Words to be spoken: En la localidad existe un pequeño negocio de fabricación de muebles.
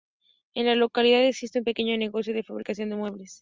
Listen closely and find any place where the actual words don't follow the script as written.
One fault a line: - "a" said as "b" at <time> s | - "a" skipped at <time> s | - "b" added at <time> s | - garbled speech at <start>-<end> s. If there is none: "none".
none